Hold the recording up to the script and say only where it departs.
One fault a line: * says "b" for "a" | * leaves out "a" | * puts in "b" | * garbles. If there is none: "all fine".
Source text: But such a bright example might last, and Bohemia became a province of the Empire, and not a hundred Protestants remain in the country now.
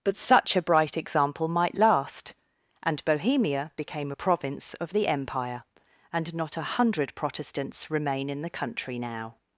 all fine